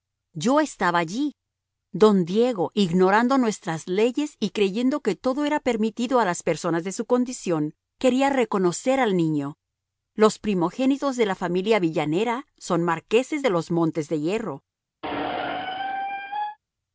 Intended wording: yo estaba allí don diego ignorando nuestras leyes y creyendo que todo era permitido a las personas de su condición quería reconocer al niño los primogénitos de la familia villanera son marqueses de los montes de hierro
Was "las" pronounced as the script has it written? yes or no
yes